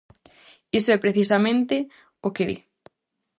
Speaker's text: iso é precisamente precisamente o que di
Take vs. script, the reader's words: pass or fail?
fail